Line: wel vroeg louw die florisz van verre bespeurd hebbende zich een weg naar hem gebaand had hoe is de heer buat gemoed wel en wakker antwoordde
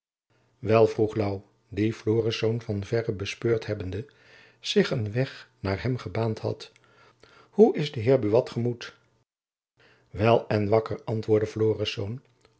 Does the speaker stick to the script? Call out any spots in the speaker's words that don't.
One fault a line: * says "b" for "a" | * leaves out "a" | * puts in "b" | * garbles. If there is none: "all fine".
all fine